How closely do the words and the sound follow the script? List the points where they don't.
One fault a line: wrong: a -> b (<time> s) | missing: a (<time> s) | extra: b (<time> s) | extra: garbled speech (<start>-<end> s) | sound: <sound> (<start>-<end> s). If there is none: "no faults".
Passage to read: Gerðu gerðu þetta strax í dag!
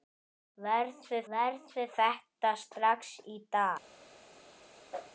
sound: whoosh (4.9-5.1 s)